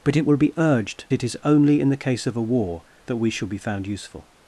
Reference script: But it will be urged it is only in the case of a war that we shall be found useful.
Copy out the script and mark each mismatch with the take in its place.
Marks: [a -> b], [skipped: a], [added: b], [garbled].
But it will be urged it is only in the case of a war that we shall be found useful.